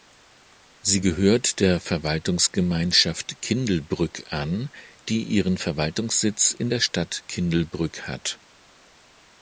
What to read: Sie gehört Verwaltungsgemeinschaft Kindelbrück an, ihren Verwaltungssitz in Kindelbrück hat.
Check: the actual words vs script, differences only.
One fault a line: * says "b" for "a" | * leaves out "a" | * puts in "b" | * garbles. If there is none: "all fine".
* puts in "der"
* puts in "die"
* puts in "der Stadt"